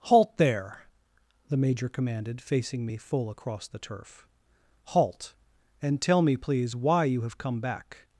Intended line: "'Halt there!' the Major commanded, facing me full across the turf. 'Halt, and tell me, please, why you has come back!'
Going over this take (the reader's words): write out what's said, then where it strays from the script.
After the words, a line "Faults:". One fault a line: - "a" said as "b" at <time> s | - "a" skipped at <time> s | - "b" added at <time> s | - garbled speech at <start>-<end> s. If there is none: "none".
"'Halt there!' the Major commanded, facing me full across the turf. 'Halt, and tell me, please, why you have come back!'
Faults:
- "has" said as "have" at 7.2 s